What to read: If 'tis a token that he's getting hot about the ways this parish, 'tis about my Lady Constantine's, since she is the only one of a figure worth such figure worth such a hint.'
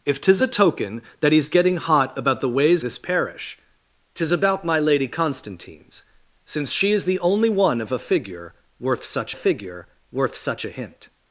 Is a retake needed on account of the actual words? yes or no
no